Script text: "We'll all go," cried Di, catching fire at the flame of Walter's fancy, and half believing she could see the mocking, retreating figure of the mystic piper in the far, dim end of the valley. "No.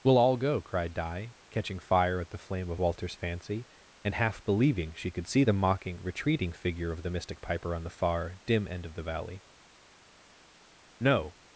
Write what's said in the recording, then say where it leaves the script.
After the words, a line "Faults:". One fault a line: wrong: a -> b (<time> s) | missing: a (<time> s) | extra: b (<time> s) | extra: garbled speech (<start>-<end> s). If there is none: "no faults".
"We'll all go," cried Di, catching fire at the flame of Walter's fancy, and half believing she could see the mocking, retreating figure of the mystic piper on the far, dim end of the valley. "No.
Faults:
wrong: in -> on (7.7 s)